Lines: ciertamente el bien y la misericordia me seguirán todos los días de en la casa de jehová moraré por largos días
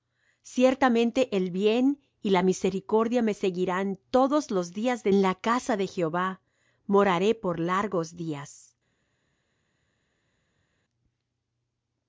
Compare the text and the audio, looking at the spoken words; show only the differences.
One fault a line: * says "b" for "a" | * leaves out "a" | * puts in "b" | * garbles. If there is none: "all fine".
all fine